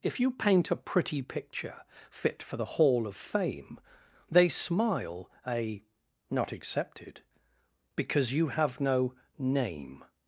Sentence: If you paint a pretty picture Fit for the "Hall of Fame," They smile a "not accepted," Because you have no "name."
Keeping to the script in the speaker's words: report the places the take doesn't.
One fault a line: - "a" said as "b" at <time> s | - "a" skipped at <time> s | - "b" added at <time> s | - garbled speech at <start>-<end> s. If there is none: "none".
none